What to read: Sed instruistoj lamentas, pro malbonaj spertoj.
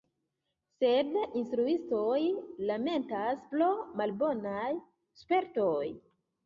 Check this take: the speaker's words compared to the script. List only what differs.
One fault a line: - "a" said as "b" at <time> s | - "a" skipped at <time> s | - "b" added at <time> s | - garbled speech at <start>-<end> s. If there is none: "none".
none